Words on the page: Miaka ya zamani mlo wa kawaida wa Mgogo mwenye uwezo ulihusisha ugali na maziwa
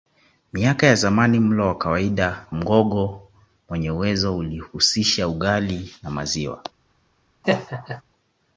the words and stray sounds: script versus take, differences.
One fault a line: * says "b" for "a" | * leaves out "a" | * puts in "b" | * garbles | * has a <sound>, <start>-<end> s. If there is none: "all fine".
* leaves out "wa"
* has a laugh, 7.4-8.0 s